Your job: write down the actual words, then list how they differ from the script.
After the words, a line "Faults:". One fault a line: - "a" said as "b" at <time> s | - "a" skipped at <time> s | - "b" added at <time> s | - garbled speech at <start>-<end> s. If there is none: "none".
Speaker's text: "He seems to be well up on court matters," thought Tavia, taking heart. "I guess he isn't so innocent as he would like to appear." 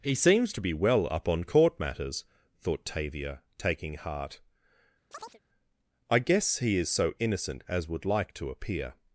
"He seems to be well up on court matters," thought Tavia, taking heart. "I guess he is so innocent as would like to appear."
Faults:
- "isn't" said as "is" at 6.8 s
- "he" skipped at 7.9 s